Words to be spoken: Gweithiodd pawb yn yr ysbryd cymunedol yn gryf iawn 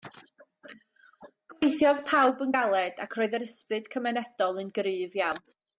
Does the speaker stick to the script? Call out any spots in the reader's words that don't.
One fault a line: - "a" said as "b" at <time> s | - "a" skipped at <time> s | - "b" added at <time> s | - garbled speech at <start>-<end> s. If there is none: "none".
- "galed ac roedd" added at 2.5 s